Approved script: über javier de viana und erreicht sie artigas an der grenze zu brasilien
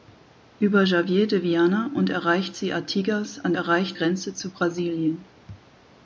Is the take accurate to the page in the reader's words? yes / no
no